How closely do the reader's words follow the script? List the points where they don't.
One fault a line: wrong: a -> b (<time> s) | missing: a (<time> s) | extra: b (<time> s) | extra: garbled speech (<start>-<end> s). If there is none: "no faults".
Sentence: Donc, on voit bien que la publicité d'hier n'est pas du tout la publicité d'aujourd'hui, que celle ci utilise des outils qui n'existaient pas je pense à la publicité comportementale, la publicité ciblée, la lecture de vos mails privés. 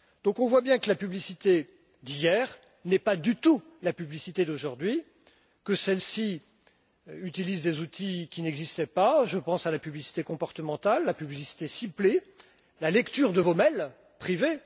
no faults